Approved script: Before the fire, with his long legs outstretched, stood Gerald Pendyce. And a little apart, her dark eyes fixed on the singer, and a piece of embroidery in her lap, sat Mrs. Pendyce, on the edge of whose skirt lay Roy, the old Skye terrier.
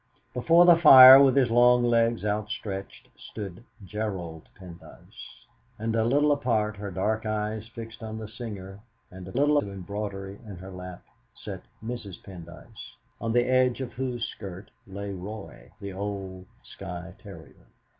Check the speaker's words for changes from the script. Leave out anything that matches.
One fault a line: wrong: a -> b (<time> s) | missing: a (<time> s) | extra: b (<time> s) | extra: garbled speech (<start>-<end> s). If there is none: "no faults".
wrong: piece -> little (9.3 s)